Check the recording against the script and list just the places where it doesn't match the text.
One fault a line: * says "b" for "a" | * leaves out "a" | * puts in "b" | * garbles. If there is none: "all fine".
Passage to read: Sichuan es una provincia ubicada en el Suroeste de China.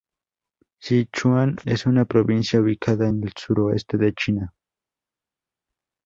all fine